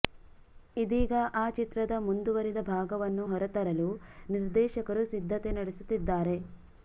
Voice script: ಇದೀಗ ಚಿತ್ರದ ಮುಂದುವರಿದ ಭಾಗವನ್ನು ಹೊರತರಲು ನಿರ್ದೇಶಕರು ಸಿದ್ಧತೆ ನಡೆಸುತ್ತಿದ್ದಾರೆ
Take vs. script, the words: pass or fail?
fail